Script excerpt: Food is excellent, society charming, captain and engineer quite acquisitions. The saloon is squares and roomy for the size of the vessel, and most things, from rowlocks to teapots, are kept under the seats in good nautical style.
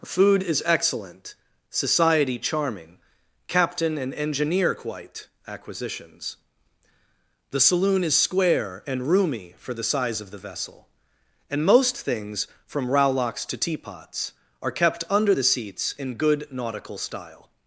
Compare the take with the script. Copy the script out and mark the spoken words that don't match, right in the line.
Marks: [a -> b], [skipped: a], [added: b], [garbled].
Food is excellent, society charming, captain and engineer quite acquisitions. The saloon is [squares -> square] and roomy for the size of the vessel, and most things, from rowlocks to teapots, are kept under the seats in good nautical style.